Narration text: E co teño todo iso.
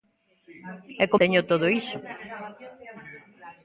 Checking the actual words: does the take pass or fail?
pass